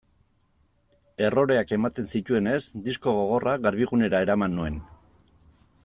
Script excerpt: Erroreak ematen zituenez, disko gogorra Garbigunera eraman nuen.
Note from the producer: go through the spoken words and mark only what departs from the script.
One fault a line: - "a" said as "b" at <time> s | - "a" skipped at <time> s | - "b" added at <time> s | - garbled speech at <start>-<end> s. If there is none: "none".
none